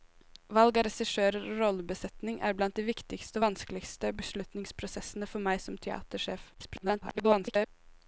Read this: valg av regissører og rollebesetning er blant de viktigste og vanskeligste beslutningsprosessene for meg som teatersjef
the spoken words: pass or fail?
fail